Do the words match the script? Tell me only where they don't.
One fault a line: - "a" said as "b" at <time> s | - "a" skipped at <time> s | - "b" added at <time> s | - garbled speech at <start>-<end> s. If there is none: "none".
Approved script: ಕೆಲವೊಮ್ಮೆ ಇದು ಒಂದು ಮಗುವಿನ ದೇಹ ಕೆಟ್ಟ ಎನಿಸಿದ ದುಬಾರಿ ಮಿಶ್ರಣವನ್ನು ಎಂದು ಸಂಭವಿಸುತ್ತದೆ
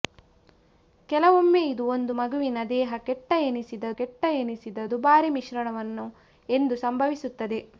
- "ಕೆಟ್ಟ ಎನಿಸಿದ" added at 4.0 s